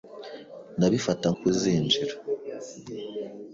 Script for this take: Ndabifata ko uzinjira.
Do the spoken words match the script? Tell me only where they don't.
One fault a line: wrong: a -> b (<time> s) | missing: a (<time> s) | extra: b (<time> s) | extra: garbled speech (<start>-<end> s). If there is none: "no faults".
no faults